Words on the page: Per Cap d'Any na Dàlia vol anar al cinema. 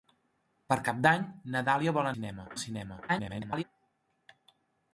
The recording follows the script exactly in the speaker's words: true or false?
false